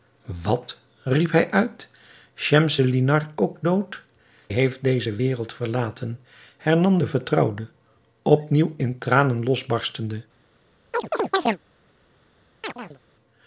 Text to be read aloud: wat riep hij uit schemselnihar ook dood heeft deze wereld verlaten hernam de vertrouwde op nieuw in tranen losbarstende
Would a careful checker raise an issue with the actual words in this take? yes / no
no